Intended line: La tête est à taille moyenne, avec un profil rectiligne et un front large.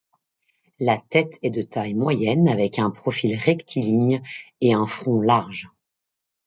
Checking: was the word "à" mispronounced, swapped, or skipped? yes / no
yes